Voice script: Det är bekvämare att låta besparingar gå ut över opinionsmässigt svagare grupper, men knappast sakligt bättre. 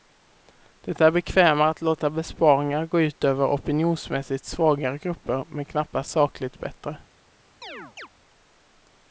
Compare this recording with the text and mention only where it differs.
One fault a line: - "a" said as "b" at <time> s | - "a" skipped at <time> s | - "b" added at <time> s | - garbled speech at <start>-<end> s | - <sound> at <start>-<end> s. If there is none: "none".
- chirp at 7.6-8.1 s